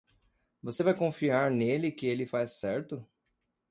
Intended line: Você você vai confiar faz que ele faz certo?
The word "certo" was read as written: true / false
true